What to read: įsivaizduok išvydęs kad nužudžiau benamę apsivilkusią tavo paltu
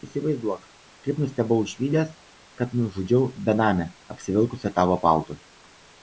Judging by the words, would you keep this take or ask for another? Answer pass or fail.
fail